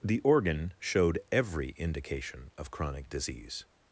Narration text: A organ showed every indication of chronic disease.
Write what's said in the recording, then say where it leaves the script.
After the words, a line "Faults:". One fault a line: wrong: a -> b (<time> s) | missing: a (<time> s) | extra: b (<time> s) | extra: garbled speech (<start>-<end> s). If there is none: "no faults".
The organ showed every indication of chronic disease.
Faults:
wrong: A -> The (0.0 s)